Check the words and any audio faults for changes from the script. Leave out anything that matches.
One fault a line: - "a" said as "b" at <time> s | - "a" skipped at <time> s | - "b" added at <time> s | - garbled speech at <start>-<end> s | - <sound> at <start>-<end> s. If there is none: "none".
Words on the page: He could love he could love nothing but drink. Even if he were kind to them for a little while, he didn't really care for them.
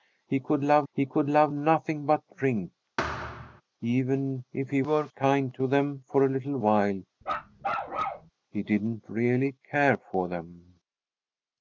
- thud at 3.0-3.6 s
- bark at 7.2-8.3 s